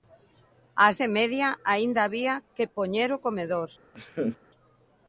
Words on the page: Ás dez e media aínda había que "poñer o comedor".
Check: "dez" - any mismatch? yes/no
yes